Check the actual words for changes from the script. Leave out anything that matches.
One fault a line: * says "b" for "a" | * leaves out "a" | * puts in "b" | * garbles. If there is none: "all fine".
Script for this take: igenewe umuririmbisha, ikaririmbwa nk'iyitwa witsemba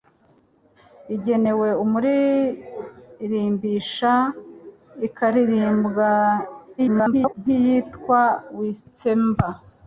* garbles